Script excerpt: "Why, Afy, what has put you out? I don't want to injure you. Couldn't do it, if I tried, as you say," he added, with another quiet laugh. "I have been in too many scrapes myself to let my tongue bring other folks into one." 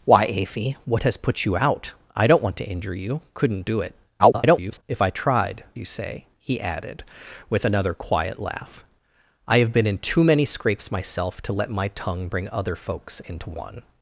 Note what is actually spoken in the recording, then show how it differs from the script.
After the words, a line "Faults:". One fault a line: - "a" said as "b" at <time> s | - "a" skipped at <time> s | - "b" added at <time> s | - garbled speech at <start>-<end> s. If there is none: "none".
"Why, Afy, what has put you out? I don't want to injure you. Couldn't do it, [garbled] if I tried, you say," he added, with another quiet laugh. "I have been in too many scrapes myself to let my tongue bring other folks into one."
Faults:
- garbled speech at 4.2-4.8 s
- "as" skipped at 5.6 s